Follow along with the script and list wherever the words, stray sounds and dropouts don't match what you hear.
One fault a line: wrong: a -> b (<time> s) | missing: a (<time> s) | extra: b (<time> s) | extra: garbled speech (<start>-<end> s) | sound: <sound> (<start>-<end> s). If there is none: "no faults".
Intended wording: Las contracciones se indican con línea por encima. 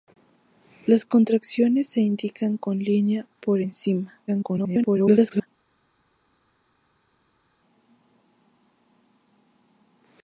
extra: garbled speech (4.3-5.5 s)